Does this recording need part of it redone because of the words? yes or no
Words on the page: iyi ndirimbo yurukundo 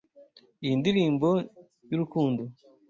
no